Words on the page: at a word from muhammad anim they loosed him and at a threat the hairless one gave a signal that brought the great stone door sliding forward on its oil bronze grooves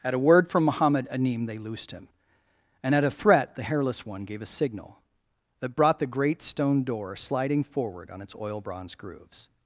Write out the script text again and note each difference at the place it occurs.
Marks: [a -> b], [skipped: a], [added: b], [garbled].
at a word from muhammad anim they loosed him and at a threat the hairless one gave a signal that brought the great stone door sliding forward on its oil bronze grooves